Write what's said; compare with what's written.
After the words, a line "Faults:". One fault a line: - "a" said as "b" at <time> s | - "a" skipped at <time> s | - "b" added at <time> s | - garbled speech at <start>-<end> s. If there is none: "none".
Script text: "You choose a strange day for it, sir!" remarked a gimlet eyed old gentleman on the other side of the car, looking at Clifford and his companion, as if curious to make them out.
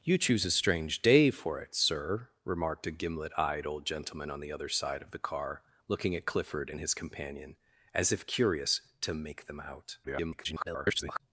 "You choose a strange day for it, sir!" remarked a gimlet eyed old gentleman on the other side of the car, looking at Clifford and his companion, as if curious to make them out. [garbled]
Faults:
- garbled speech at 10.0-11.2 s